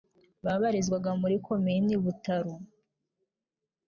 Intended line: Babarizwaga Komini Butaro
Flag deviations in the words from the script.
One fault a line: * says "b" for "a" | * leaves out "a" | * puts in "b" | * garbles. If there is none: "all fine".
* puts in "muri"